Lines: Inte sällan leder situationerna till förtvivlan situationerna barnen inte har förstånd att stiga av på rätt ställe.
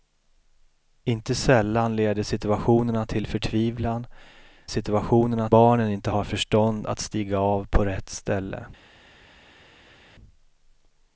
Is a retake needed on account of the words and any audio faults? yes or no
no